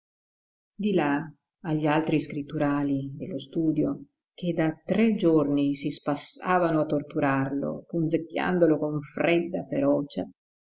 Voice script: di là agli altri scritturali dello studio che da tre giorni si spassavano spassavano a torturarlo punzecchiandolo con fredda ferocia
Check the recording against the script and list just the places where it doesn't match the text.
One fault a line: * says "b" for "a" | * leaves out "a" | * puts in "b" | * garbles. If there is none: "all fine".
* leaves out "spassavano"